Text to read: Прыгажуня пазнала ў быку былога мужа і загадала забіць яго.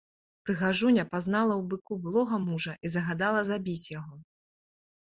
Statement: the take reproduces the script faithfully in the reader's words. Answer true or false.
true